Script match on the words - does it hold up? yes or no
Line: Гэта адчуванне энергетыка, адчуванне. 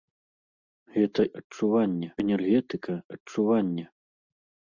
yes